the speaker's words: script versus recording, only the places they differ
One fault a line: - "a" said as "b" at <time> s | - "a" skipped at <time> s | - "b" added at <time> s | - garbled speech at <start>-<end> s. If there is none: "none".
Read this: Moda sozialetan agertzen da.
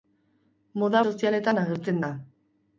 none